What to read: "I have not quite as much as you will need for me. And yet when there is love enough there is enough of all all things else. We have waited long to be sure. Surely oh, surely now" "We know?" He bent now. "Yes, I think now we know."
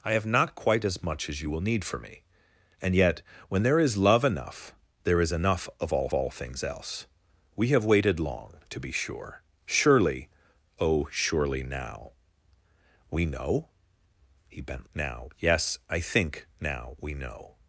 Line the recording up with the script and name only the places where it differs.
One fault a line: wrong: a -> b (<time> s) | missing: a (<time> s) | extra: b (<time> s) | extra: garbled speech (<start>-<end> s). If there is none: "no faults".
no faults